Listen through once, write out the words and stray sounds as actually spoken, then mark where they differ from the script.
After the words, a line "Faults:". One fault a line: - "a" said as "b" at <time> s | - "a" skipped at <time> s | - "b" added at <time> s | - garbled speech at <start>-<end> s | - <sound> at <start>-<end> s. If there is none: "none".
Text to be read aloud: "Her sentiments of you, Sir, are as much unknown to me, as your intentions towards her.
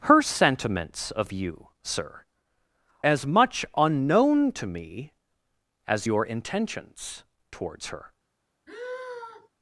"Her sentiments of you, Sir, as much unknown to me, as your intentions towards her.
Faults:
- "are" skipped at 2.2 s
- sigh at 8.7-9.5 s